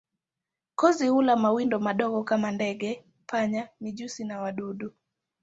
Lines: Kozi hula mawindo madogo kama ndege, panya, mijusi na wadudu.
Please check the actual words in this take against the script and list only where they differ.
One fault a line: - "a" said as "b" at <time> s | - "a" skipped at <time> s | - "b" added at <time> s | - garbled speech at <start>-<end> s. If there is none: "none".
none